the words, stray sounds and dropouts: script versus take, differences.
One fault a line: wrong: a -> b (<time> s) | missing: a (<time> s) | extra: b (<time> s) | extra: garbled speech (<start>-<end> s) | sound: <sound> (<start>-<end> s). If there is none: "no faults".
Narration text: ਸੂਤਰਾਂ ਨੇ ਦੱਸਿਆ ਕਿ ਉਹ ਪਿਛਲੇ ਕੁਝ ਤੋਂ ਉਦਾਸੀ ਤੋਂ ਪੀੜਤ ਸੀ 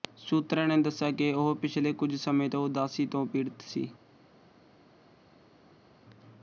extra: ਸਮੇਂ (2.1 s)